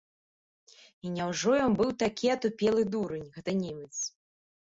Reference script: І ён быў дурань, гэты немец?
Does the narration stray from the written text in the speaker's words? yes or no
yes